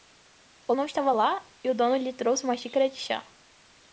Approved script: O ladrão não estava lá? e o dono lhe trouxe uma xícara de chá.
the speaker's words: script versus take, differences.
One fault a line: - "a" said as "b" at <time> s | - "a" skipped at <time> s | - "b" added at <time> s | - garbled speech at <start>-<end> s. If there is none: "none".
- "ladrão" skipped at 0.7 s